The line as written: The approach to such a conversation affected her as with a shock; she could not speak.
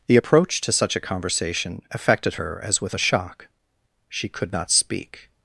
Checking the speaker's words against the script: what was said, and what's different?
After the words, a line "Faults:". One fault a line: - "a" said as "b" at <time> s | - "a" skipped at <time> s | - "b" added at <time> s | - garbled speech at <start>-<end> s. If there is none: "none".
The approach to such a conversation affected her as with a shock; she could not speak.
Faults:
none